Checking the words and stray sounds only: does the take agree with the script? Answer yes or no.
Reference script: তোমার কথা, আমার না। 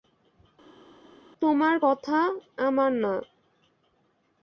yes